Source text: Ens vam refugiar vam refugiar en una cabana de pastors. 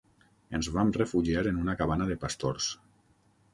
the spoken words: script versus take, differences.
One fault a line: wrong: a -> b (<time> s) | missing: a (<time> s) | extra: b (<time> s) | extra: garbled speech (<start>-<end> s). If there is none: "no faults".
missing: vam refugiar (1.4 s)